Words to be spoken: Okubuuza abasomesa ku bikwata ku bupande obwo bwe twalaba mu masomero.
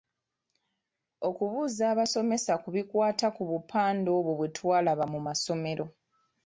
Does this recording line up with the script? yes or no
yes